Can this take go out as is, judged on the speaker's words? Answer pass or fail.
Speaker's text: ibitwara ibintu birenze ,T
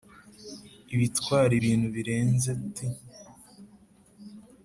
pass